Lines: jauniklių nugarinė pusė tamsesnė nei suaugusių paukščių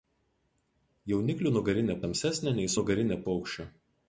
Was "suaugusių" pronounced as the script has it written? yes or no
no